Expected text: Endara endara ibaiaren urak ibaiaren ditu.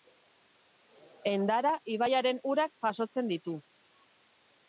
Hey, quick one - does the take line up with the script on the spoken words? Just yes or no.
no